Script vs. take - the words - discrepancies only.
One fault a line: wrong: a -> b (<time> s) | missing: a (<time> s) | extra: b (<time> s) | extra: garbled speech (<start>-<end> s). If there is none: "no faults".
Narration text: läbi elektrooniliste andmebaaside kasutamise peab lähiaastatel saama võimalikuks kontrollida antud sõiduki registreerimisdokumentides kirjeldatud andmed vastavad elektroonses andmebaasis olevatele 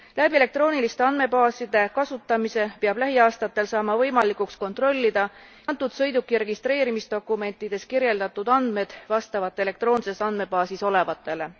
no faults